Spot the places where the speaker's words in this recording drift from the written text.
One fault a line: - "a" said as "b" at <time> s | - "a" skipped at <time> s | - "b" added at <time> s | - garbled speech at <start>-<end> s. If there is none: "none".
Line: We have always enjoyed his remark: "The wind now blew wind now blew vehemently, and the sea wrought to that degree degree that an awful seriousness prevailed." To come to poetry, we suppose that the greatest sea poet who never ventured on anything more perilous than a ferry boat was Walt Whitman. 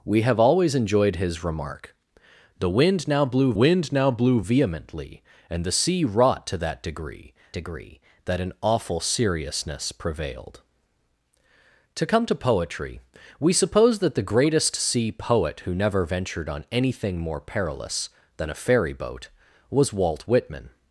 none